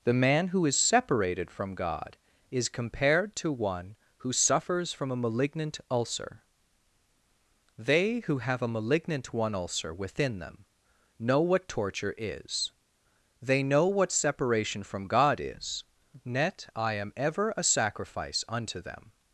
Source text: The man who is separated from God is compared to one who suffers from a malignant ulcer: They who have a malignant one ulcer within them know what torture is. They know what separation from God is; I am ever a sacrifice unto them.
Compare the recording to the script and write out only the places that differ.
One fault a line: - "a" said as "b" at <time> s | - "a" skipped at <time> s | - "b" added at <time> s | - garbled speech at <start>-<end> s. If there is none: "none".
- "net" added at 16.2 s